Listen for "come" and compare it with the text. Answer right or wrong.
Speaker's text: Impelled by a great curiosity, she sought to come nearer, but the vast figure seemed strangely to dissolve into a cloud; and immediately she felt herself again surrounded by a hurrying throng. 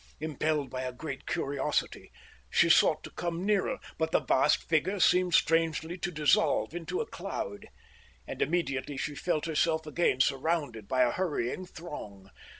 right